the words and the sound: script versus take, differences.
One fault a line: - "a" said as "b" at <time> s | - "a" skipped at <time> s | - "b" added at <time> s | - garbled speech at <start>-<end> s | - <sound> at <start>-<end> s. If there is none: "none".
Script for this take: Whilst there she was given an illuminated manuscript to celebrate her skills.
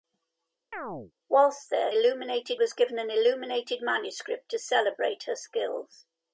- chirp at 0.7-1.1 s
- "she" said as "illuminated" at 1.9 s